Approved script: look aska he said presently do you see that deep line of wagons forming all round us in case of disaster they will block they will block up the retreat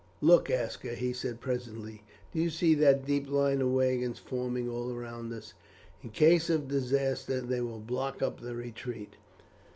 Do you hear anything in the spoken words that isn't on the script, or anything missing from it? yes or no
yes